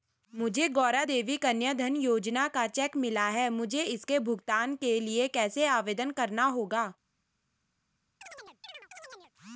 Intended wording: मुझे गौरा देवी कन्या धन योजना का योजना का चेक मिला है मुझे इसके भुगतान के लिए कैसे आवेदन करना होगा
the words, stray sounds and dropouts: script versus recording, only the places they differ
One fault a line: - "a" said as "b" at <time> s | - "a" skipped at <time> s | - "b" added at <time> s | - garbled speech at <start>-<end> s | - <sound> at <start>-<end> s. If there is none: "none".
- "योजना का" skipped at 2.7 s
- chirp at 8.2-9.3 s